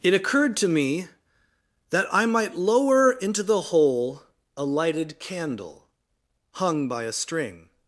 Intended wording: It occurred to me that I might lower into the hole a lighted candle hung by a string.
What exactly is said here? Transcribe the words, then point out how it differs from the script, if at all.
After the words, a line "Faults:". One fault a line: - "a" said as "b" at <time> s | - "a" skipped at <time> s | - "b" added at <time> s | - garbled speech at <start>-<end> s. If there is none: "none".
It occurred to me that I might lower into the hole a lighted candle hung by a string.
Faults:
none